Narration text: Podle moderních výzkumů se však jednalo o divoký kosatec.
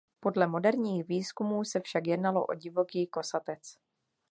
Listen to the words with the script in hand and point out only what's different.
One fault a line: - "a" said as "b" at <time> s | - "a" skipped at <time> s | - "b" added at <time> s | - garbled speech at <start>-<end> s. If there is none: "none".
none